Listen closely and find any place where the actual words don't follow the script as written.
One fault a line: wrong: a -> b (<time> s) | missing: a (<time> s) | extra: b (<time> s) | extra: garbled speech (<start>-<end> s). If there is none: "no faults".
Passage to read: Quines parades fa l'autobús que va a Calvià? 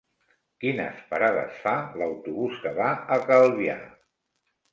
no faults